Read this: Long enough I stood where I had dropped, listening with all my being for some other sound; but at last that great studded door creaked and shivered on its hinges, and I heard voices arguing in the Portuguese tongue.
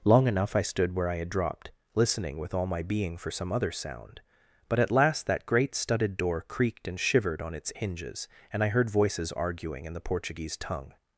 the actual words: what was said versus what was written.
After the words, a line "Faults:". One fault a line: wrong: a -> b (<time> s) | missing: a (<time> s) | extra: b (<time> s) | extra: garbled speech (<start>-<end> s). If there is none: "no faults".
Long enough I stood where I had dropped, listening with all my being for some other sound; but at last that great studded door creaked and shivered on its hinges, and I heard voices arguing in the Portuguese tongue.
Faults:
no faults